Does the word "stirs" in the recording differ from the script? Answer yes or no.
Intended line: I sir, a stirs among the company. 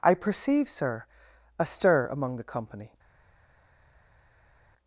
yes